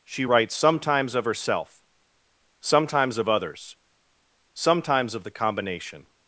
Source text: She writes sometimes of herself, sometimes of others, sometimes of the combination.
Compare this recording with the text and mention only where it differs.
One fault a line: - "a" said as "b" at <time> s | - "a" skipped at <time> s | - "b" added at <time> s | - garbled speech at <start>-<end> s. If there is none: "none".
none